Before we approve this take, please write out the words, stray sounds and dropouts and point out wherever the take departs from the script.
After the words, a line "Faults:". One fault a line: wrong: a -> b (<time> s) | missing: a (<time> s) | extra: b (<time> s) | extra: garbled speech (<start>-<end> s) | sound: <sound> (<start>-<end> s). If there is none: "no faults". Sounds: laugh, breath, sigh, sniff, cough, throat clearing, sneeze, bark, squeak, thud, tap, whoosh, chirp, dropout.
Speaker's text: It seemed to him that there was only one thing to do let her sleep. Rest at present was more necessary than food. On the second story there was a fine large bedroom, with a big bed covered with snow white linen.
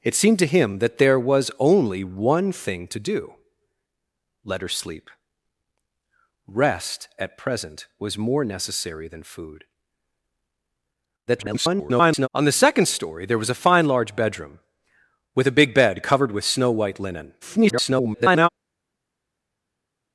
It seemed to him that there was only one thing to do let her sleep. Rest at present was more necessary than food. [garbled] On the second story there was a fine large bedroom, with a big bed covered with snow white linen. [garbled]
Faults:
extra: garbled speech (11.3-12.3 s)
extra: garbled speech (17.4-18.5 s)